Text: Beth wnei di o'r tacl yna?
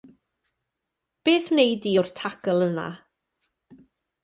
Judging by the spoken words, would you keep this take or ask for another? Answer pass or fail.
pass